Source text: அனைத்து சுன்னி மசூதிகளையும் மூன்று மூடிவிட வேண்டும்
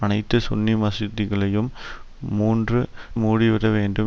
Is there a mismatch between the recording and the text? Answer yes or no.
no